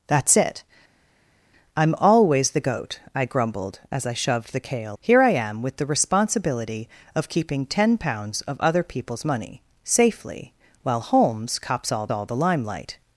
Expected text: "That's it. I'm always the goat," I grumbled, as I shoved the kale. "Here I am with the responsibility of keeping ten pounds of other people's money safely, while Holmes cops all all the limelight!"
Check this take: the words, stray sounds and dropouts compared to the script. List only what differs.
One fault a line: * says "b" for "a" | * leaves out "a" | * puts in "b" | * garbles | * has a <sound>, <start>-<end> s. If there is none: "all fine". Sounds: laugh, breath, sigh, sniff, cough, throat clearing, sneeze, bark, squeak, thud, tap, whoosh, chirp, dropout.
all fine